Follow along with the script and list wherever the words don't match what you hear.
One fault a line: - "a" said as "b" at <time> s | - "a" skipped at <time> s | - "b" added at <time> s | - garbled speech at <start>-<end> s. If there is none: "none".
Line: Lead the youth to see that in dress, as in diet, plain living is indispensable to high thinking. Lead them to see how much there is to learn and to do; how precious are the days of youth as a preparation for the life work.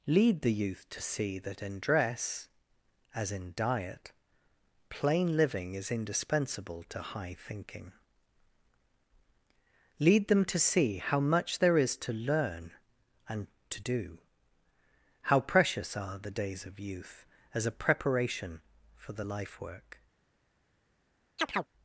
none